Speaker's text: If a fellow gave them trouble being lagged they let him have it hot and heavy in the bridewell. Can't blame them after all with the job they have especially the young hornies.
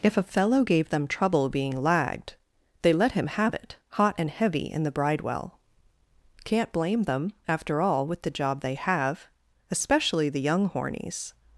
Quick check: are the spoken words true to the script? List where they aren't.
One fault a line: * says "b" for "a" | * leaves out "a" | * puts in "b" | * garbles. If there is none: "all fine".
all fine